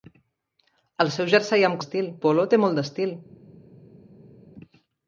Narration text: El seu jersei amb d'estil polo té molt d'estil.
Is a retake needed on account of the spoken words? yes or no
no